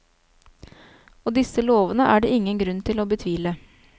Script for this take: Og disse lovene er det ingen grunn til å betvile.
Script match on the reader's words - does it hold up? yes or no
yes